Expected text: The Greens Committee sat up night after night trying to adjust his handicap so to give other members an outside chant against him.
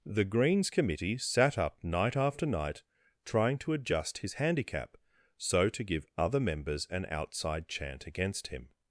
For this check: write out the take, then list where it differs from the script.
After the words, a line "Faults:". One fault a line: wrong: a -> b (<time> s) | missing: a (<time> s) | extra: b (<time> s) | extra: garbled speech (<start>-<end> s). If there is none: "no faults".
The Greens Committee sat up night after night trying to adjust his handicap so to give other members an outside chant against him.
Faults:
no faults